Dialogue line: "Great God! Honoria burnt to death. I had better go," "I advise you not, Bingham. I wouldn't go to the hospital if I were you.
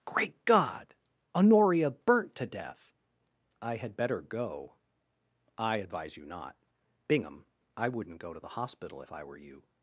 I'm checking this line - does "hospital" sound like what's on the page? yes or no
yes